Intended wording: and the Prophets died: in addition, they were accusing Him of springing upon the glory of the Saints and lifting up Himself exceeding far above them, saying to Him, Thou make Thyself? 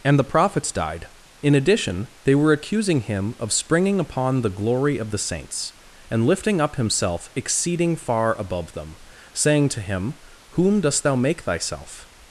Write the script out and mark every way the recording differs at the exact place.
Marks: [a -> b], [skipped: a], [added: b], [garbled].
and the Prophets died: in addition, they were accusing Him of springing upon the glory of the Saints and lifting up Himself exceeding far above them, saying to Him, [added: Whom dost] Thou make Thyself?